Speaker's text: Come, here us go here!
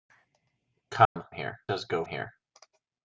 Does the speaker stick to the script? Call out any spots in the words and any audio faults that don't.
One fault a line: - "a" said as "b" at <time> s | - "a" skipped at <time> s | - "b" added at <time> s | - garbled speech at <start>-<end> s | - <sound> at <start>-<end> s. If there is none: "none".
- dropout at 1.0-1.2 s